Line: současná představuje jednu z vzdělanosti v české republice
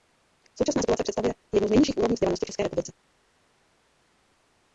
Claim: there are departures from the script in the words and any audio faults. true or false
true